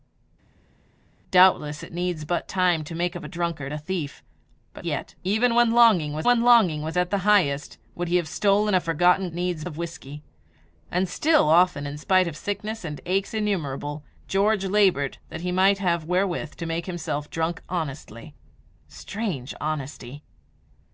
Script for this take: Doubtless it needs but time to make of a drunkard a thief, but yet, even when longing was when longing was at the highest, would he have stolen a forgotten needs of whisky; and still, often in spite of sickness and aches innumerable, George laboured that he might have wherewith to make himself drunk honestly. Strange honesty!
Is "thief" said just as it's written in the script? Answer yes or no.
yes